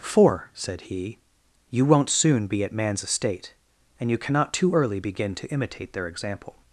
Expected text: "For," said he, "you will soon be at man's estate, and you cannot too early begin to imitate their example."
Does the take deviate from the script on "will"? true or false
true